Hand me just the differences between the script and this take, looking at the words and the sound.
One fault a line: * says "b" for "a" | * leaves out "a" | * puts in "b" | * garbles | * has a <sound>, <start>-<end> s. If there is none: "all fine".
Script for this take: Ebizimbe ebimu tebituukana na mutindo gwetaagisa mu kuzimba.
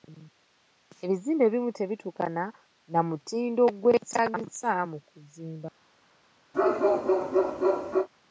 * has a bark, 6.5-8.1 s